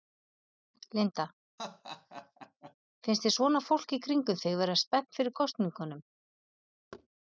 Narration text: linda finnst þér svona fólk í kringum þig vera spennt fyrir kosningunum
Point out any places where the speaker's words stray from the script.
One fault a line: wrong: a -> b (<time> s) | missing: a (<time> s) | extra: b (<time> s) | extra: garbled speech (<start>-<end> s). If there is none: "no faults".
no faults